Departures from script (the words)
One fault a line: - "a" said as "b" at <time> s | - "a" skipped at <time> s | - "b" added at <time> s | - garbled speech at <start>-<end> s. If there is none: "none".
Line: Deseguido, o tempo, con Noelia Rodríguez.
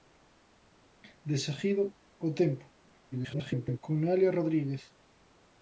- garbled speech at 3.1-3.8 s